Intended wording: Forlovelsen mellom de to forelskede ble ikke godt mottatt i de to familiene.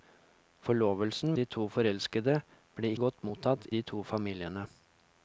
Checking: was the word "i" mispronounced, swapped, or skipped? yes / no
yes